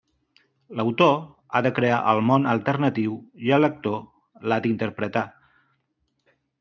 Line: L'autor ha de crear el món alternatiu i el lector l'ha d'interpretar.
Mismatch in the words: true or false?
false